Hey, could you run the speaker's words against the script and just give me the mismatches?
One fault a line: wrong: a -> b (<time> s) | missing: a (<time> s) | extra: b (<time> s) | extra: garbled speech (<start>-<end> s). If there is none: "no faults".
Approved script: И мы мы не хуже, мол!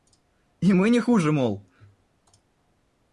missing: мы (0.9 s)